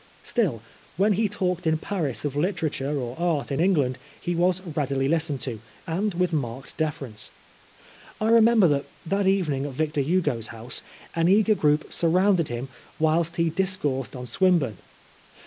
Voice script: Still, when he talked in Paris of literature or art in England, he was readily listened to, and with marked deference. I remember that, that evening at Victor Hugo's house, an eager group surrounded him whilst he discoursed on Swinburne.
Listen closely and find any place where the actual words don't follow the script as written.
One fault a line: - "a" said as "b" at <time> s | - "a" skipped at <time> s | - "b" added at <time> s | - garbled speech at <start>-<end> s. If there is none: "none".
none